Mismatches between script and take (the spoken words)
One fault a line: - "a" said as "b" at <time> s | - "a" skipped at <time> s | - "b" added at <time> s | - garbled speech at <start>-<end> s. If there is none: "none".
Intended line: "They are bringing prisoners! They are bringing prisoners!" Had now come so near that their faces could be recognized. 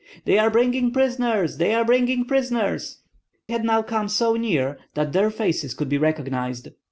none